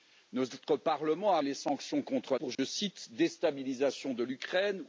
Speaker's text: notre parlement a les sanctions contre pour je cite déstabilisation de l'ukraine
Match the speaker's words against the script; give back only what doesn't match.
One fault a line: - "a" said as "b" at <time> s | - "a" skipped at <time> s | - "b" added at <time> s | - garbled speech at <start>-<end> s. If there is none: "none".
none